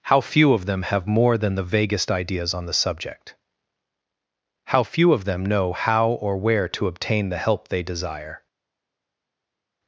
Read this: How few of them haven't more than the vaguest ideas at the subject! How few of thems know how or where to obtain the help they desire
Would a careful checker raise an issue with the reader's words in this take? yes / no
yes